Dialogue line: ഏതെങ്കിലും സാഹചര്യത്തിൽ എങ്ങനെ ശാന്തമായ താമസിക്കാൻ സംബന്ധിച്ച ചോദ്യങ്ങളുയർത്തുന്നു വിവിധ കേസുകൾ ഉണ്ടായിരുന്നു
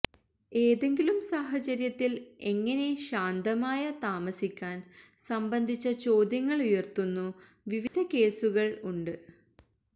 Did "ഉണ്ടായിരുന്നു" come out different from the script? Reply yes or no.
yes